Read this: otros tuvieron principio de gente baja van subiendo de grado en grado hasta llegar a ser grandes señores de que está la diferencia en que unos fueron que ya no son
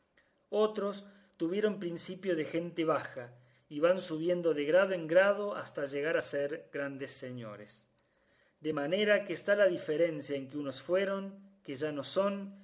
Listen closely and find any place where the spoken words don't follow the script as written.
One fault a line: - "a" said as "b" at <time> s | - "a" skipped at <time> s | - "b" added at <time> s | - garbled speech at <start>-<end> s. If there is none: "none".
- "y" added at 3.7 s
- "manera" added at 8.7 s